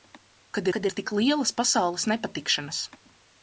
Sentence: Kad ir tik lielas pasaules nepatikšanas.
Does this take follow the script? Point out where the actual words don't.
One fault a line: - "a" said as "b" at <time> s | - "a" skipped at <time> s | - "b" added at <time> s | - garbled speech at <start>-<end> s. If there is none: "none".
- "kad" added at 0.8 s